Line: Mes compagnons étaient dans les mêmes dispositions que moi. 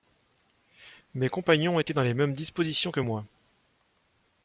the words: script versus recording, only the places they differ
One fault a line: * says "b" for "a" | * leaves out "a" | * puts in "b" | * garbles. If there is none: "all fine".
all fine